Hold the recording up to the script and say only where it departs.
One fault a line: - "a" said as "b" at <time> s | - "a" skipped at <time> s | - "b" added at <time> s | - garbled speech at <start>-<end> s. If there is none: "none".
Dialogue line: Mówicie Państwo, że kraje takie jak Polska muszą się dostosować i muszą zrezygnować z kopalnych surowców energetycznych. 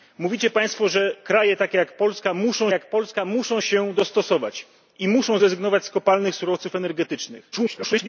- "jak Polska muszą" added at 2.7 s
- garbled speech at 7.5-8.1 s